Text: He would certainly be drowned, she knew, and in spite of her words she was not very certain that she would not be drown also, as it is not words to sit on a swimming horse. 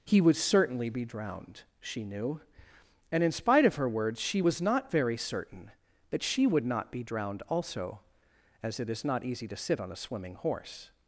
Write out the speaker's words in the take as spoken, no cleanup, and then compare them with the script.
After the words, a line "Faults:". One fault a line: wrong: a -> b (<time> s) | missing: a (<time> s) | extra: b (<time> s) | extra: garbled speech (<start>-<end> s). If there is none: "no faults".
He would certainly be drowned, she knew, and in spite of her words she was not very certain that she would not be drowned also, as it is not easy to sit on a swimming horse.
Faults:
wrong: drown -> drowned (7.0 s)
wrong: words -> easy (9.2 s)